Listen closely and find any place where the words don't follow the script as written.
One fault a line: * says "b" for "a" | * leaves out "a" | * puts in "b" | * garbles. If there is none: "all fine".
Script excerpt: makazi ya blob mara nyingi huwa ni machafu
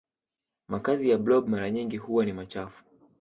all fine